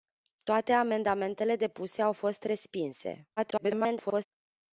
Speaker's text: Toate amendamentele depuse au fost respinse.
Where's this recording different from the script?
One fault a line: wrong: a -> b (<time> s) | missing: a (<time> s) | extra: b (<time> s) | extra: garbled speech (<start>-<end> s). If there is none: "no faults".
extra: garbled speech (3.4-4.3 s)